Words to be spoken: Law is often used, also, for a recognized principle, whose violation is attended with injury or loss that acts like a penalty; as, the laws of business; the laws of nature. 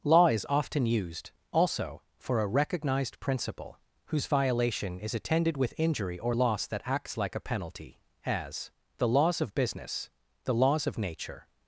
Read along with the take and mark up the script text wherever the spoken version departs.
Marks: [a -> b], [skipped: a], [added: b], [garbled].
Law is often used, also, for a recognized principle, whose violation is attended with injury or loss that acts like a penalty; as, the laws of business; the laws of nature.